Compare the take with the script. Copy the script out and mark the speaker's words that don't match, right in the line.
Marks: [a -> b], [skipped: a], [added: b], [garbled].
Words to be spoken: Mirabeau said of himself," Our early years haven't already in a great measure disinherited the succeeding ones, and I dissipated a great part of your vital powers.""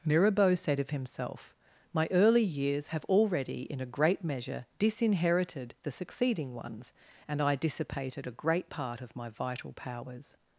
Mirabeau said of himself," [Our -> My] early years [haven't -> have] already in a great measure disinherited the succeeding ones, and I dissipated a great part of [your -> my] vital powers.""